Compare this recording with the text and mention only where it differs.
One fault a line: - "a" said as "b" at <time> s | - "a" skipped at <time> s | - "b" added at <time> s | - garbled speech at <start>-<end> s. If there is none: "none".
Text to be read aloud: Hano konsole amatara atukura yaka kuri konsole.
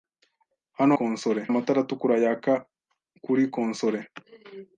none